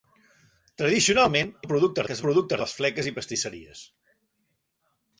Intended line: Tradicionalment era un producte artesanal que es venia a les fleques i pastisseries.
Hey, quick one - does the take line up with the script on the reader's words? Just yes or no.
no